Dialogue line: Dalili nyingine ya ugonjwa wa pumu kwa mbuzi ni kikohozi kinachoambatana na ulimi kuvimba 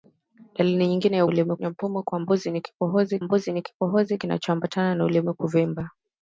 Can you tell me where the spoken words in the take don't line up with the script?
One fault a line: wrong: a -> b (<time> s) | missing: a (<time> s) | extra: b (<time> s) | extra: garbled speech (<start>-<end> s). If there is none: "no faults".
wrong: ugonjwa -> ulimi (1.3 s)
extra: mbuzi ni kikohozi (3.2 s)